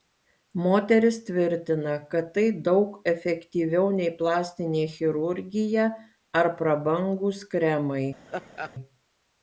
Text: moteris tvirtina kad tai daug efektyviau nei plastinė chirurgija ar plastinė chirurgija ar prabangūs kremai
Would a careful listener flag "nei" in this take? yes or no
no